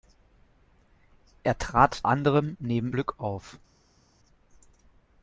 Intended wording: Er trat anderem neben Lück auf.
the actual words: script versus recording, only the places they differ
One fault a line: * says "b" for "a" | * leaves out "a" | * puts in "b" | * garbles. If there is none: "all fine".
all fine